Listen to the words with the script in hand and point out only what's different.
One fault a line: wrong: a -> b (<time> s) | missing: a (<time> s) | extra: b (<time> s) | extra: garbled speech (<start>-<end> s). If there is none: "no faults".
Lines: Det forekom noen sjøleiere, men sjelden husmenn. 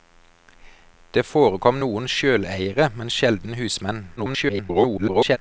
extra: garbled speech (4.2-5.4 s)